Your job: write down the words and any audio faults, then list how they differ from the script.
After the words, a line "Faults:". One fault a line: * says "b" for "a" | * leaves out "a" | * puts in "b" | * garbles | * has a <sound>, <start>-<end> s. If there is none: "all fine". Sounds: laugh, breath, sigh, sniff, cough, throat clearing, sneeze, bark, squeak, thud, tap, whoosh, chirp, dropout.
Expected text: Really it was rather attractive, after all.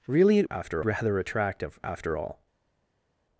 Really it after rather attractive, after all.
Faults:
* says "after" for "was"